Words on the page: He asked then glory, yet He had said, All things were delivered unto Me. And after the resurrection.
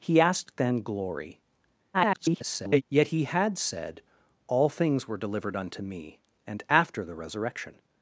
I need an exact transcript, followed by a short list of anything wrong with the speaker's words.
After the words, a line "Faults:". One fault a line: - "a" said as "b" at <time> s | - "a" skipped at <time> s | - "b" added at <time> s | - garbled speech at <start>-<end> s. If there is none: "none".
He asked then glory, [garbled] yet He had said, All things were delivered unto Me. And after the resurrection.
Faults:
- garbled speech at 1.9-2.8 s